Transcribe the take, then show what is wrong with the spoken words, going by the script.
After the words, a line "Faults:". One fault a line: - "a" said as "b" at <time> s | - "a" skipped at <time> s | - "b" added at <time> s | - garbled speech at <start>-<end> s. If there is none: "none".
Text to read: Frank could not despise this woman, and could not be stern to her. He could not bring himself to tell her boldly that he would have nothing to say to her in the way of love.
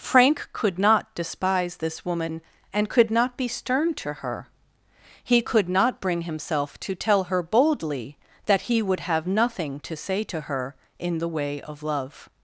Frank could not despise this woman, and could not be stern to her. He could not bring himself to tell her boldly that he would have nothing to say to her in the way of love.
Faults:
none